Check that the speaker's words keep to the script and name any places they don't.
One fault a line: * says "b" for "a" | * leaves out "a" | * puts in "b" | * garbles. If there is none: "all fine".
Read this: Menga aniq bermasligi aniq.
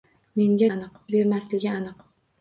all fine